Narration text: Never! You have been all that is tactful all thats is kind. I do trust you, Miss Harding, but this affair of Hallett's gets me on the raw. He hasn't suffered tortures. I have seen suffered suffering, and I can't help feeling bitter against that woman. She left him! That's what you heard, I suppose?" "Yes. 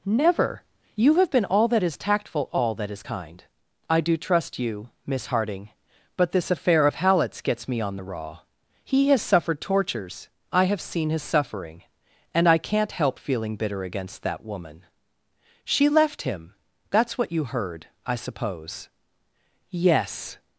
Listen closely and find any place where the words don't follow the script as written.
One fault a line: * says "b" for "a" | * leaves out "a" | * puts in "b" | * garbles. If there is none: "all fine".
* says "that" for "thats"
* says "has" for "hasn't"
* says "his" for "suffered"